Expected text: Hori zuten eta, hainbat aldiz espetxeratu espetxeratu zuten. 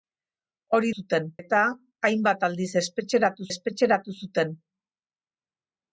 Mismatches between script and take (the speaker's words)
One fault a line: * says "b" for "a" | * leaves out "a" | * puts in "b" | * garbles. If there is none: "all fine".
all fine